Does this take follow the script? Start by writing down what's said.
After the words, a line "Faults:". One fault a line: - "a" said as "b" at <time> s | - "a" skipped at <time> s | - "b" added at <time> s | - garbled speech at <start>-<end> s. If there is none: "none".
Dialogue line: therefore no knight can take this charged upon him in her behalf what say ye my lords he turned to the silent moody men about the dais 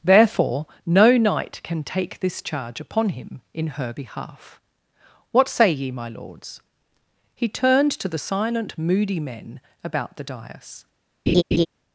therefore no knight can take this charge upon him in her behalf what say ye my lords he turned to the silent moody men about the dais
Faults:
- "charged" said as "charge" at 2.4 s